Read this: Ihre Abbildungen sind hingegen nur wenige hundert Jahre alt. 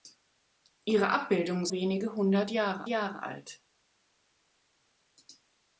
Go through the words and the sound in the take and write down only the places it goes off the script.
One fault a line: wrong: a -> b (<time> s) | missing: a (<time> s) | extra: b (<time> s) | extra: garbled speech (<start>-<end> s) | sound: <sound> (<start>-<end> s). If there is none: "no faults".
missing: sind hingegen nur (1.7 s)
extra: Jahre (2.9 s)